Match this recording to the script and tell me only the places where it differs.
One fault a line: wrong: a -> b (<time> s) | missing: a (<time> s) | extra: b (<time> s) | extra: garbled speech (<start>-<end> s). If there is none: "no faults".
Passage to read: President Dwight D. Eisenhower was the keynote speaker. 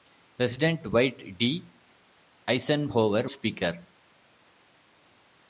missing: was the keynote (3.3 s)